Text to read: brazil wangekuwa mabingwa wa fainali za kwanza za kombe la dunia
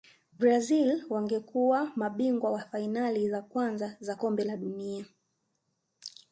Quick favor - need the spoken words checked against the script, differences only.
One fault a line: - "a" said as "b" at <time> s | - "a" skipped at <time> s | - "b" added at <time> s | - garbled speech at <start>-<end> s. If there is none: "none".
none